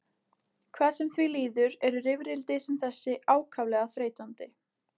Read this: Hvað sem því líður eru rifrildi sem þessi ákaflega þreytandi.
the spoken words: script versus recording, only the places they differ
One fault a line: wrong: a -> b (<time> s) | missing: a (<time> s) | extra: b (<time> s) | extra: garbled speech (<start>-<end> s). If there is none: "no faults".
no faults